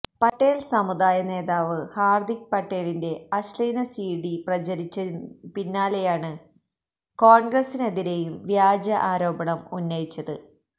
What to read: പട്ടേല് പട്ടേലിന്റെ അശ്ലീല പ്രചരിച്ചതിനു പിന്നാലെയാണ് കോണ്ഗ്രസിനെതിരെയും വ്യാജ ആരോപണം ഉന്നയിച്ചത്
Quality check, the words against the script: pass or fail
fail